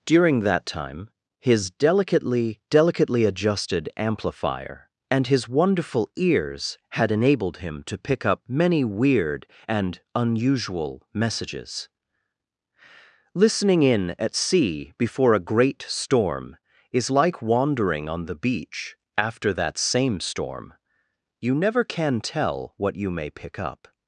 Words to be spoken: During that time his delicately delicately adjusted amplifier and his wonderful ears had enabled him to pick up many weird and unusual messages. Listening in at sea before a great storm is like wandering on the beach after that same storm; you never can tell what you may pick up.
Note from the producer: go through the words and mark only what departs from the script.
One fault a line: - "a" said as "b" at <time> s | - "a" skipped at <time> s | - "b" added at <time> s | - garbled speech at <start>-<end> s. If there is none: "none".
none